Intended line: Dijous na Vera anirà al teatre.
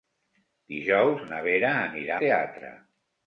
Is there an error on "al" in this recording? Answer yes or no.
yes